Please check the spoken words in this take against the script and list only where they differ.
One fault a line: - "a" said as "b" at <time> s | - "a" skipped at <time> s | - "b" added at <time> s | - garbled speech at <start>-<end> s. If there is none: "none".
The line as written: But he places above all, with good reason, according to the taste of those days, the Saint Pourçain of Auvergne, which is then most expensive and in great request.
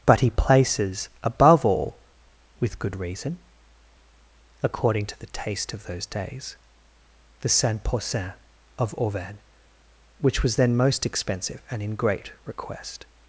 - "is" said as "was" at 10.4 s